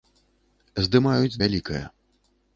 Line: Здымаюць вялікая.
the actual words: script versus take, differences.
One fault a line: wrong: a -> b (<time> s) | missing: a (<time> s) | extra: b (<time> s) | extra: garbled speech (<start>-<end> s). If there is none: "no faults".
no faults